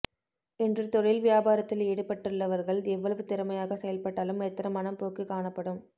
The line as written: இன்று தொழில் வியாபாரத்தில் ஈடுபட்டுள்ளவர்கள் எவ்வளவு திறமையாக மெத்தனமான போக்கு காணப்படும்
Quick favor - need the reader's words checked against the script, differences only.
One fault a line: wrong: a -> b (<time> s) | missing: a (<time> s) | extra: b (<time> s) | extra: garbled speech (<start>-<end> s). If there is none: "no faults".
extra: செயல்பட்டாலும் (3.8 s)